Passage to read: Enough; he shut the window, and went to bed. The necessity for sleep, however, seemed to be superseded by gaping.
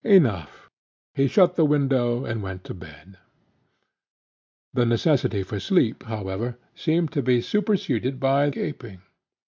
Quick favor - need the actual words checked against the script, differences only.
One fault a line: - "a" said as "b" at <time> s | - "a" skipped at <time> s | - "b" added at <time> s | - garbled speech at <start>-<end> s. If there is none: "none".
none